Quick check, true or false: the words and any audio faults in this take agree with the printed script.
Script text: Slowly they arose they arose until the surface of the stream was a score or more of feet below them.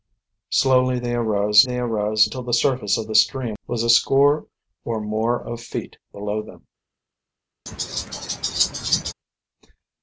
false